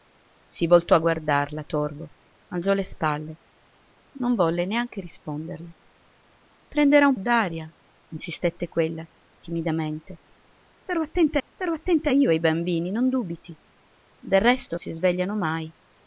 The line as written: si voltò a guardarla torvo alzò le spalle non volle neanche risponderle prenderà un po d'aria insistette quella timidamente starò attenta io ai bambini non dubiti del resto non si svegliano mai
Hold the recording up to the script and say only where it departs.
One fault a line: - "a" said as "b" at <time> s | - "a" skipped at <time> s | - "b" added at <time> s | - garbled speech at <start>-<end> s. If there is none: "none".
- "po" skipped at 7.2 s
- "starò attenta" added at 11.5 s
- "non" skipped at 14.8 s